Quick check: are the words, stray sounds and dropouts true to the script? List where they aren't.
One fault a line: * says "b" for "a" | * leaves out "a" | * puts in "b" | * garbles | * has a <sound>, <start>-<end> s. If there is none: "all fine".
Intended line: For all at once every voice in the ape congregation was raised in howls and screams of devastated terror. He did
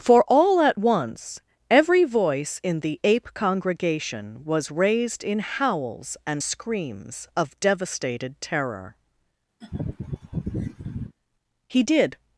* has a laugh, 9.6-11.2 s